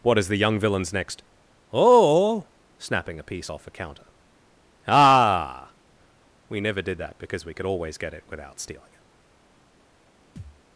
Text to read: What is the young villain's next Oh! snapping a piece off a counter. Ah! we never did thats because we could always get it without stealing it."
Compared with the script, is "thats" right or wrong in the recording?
wrong